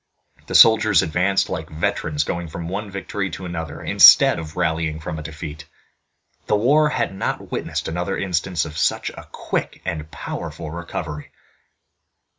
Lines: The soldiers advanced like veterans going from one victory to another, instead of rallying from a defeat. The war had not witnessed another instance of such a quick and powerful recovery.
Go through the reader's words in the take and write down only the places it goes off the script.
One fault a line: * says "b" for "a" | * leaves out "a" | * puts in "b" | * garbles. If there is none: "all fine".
all fine